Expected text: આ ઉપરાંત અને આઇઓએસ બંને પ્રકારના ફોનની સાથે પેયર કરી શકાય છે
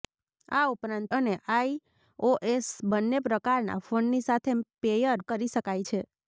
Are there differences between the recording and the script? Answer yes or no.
no